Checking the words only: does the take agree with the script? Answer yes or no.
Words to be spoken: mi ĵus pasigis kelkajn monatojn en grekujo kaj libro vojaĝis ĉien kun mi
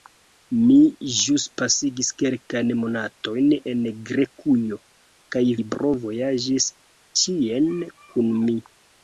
yes